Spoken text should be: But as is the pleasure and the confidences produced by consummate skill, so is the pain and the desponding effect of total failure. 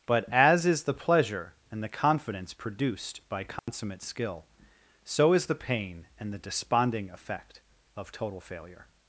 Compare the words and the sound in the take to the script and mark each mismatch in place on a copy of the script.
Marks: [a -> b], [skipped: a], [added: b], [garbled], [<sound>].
But as is the pleasure and the [confidences -> confidence] produced by consummate [dropout] skill, so is the pain and the desponding effect of total failure.